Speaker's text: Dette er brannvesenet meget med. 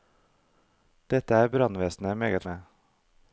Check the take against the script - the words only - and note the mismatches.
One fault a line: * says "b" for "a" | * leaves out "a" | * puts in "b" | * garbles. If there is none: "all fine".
all fine